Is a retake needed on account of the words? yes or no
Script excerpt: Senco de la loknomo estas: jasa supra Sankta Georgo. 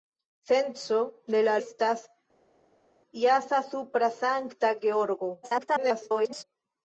yes